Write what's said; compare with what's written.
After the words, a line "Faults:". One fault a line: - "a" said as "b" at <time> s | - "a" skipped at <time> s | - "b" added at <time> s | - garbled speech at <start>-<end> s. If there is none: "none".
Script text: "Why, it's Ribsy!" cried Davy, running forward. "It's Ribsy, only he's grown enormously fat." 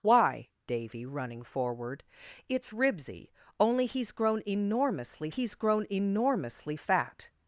"Why, Davy, running forward. "It's Ribsy, only he's grown enormously he's grown enormously fat."
Faults:
- "it's Ribsy cried" skipped at 0.5 s
- "he's grown enormously" added at 5.3 s